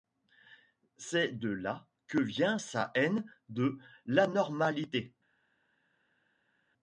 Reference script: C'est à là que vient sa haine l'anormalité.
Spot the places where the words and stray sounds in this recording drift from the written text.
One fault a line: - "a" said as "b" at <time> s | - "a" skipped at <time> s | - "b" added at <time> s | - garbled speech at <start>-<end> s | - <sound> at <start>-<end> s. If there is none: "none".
- "à" said as "de" at 1.3 s
- "de" added at 3.5 s